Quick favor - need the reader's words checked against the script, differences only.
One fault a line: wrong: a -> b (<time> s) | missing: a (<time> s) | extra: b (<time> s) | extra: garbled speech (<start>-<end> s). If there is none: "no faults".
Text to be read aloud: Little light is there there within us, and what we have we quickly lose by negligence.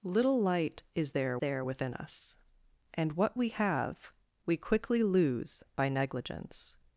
no faults